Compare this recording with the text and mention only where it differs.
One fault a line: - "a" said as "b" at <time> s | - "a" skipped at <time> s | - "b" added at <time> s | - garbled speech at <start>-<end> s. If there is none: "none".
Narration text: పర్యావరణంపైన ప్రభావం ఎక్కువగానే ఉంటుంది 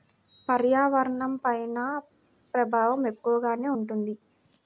none